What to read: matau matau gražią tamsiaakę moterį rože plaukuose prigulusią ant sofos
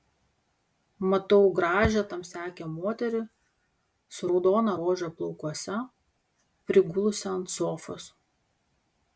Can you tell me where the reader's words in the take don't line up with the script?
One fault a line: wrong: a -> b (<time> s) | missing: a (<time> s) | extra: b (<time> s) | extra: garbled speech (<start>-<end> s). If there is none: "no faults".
missing: matau (1.5 s)
extra: su raudona (4.2 s)